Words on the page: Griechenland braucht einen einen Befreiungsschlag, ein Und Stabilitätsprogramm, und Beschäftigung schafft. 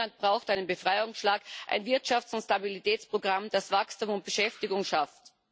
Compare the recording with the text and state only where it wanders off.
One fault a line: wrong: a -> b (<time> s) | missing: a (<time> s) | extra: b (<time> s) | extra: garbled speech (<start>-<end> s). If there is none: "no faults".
missing: einen (0.7 s)
extra: Wirtschafts (1.9 s)
extra: das Wachstum (3.5 s)